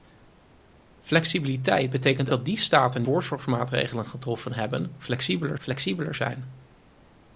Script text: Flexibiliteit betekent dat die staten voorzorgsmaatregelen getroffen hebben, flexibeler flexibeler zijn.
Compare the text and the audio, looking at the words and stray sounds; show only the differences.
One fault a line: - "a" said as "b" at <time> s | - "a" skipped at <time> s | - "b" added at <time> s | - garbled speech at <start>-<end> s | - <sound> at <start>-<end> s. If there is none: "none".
none